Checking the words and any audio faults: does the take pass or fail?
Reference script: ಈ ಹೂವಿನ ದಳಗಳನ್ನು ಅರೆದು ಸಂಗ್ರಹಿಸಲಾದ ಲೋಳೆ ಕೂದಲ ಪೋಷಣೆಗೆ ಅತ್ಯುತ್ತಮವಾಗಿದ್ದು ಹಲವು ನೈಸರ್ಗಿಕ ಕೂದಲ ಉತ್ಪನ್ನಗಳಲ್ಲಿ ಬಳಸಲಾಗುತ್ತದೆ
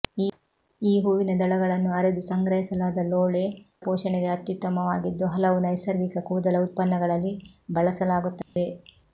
fail